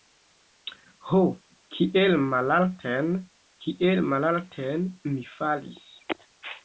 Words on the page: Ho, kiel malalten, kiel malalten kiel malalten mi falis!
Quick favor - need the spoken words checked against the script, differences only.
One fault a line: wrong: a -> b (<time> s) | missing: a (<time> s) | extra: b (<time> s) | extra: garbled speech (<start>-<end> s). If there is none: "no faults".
missing: kiel malalten (4.9 s)